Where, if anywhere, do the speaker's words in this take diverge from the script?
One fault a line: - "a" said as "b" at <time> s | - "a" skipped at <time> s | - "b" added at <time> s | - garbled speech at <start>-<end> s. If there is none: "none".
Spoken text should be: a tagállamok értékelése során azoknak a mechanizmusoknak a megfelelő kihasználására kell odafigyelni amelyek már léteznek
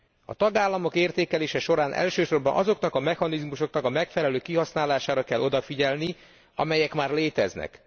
- "elsősorban" added at 1.9 s